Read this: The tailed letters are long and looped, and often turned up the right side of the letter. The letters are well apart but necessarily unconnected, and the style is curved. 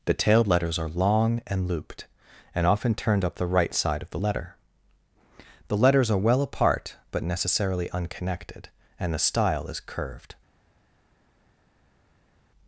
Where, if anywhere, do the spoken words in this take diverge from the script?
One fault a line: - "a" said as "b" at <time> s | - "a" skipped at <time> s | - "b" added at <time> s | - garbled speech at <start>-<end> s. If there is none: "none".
none